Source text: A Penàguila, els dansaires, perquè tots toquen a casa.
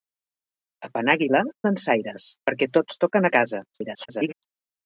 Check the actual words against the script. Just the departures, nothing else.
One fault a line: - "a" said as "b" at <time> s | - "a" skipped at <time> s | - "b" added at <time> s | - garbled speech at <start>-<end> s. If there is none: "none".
- "els" skipped at 1.4 s
- garbled speech at 3.7-4.3 s